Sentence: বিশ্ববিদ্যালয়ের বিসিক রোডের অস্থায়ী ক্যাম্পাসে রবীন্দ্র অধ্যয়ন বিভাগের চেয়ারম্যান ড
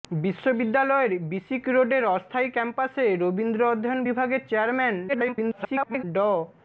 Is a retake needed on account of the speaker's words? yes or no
yes